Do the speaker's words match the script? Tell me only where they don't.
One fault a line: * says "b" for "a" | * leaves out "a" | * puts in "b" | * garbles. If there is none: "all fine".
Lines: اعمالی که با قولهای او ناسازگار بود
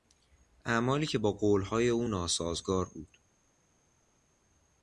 all fine